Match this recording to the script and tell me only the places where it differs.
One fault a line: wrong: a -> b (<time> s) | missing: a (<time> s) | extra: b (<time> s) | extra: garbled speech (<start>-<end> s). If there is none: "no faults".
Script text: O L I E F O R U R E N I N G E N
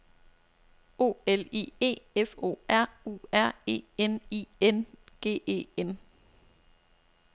no faults